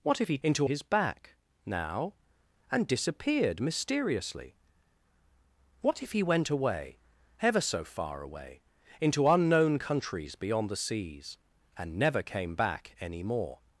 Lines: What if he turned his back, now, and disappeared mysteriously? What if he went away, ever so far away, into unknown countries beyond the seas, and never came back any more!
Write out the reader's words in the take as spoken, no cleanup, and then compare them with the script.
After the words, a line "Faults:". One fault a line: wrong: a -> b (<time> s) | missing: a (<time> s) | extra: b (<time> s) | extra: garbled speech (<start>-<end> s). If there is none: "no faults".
What if he into his back, now, and disappeared mysteriously? What if he went away, ever so far away, into unknown countries beyond the seas, and never came back any more!
Faults:
wrong: turned -> into (0.4 s)